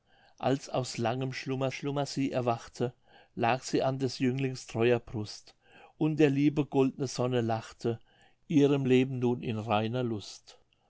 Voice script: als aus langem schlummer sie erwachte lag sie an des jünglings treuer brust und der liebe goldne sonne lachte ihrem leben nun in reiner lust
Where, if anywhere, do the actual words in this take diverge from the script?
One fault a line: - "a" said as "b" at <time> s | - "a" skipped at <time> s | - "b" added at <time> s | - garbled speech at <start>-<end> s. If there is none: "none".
- "schlummer" added at 1.7 s